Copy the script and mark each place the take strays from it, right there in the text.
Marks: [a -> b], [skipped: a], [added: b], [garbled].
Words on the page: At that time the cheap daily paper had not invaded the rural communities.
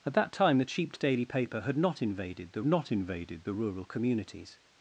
At that time the cheap daily paper had not invaded the [added: not invaded the] rural communities.